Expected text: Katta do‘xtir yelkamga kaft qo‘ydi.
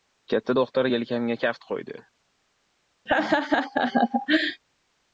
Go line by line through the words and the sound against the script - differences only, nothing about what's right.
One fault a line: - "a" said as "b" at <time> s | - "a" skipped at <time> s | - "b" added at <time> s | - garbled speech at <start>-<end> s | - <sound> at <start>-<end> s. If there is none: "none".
- laugh at 3.1-4.6 s